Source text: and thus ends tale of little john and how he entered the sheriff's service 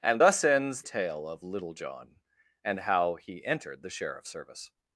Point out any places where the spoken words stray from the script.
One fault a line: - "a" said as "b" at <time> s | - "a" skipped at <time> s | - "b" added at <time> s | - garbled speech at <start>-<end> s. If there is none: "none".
none